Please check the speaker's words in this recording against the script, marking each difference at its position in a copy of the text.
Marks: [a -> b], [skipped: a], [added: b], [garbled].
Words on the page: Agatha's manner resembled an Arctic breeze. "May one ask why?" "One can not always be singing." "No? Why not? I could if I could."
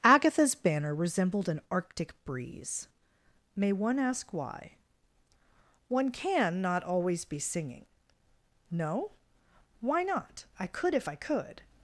Agatha's [manner -> banner] resembled an Arctic breeze. "May one ask why?" "One can not always be singing." "No? Why not? I could if I could."